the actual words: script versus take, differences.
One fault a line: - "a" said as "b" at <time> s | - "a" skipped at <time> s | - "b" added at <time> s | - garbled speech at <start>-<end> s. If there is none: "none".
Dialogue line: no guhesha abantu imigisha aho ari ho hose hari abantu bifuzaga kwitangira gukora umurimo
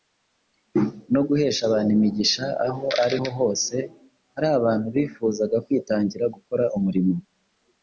none